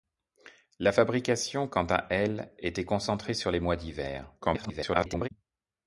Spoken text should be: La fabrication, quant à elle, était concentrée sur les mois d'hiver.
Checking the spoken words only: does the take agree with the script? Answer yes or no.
no